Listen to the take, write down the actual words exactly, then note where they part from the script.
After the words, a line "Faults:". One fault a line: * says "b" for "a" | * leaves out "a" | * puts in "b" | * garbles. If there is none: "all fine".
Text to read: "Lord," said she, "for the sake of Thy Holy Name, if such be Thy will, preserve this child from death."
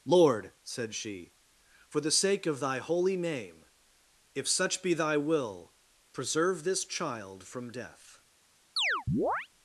"Lord," said she, "for the sake of Thy Holy Name, if such be Thy will, preserve this child from death."
Faults:
all fine